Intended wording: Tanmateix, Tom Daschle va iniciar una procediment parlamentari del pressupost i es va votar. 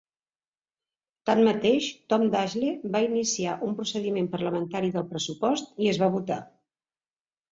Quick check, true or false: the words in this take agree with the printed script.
false